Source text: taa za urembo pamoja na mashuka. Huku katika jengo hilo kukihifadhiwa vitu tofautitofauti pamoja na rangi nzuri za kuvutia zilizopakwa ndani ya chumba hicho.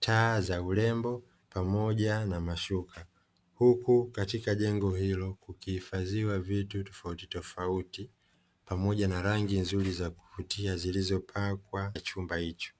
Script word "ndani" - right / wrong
wrong